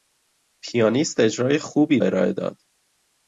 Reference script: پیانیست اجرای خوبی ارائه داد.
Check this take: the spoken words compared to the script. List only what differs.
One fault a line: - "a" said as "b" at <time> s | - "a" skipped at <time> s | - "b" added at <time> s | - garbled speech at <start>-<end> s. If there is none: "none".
none